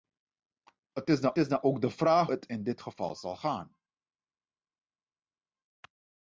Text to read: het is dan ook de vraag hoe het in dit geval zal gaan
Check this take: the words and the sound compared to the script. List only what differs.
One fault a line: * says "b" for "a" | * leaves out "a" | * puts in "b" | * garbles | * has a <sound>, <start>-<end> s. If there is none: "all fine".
* puts in "is dan"
* leaves out "hoe"